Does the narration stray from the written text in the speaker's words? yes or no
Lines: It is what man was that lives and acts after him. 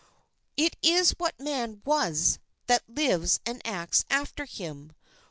no